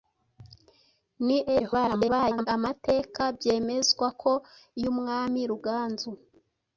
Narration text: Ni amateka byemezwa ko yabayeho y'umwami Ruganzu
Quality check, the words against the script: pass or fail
fail